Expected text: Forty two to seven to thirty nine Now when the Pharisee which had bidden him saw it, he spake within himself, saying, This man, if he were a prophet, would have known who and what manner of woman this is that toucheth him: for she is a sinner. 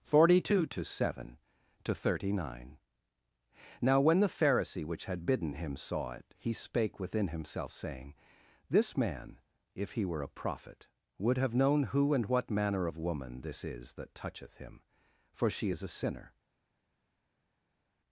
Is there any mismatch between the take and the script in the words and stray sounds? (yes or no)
no